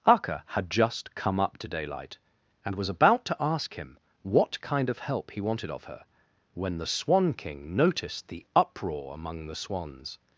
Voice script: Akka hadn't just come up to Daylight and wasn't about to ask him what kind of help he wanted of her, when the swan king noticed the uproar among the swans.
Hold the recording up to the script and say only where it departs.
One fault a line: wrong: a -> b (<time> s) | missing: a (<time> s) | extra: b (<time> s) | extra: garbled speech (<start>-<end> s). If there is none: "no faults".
wrong: hadn't -> had (0.5 s)
wrong: wasn't -> was (2.8 s)